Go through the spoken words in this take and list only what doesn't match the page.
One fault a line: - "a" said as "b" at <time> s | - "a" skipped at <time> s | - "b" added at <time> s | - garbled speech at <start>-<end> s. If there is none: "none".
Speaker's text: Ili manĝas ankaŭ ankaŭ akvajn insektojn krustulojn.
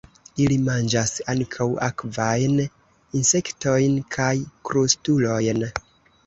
- "ankaŭ" skipped at 1.7 s
- "kaj" added at 4.2 s